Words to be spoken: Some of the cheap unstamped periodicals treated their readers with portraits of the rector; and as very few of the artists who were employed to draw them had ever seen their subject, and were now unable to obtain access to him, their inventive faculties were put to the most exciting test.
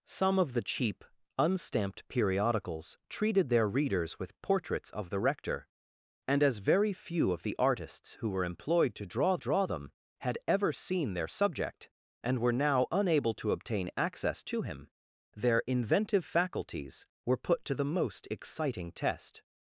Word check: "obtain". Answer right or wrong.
right